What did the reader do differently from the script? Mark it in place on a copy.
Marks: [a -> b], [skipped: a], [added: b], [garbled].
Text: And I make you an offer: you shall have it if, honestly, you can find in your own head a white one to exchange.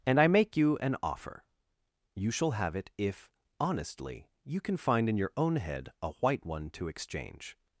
And I make you an offer: you shall have it if, honestly, you can find in your own head a white one to exchange.